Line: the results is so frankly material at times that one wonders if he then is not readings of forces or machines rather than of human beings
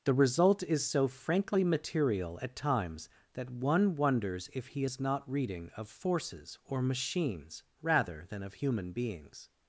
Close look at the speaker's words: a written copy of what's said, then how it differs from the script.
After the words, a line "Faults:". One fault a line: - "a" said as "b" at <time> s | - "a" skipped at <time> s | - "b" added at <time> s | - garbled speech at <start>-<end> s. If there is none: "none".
the result is so frankly material at times that one wonders if he is not reading of forces or machines rather than of human beings
Faults:
- "results" said as "result" at 0.1 s
- "then" skipped at 4.8 s
- "readings" said as "reading" at 5.3 s